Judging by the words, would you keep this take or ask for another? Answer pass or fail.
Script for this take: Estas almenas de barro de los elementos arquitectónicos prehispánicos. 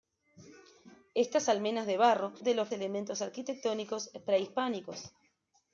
pass